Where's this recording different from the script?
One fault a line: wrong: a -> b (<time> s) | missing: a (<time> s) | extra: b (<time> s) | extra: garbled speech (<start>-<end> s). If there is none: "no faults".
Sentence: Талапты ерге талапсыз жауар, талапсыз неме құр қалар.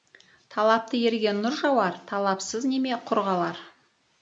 wrong: талапсыз -> нұр (1.4 s)